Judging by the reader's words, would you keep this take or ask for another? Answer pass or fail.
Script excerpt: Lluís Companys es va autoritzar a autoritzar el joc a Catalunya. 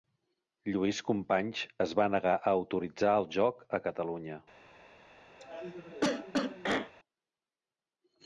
fail